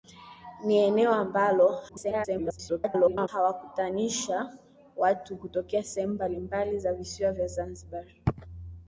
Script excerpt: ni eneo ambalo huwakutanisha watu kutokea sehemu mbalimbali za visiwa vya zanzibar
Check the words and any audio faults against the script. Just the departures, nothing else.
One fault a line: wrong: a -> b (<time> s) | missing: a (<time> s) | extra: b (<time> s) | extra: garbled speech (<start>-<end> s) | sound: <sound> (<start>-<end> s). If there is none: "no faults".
extra: garbled speech (1.9-3.3 s)